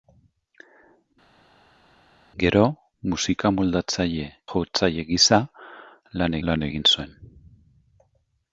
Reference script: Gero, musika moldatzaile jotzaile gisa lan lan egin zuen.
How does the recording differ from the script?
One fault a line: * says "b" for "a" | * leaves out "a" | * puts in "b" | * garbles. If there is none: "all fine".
all fine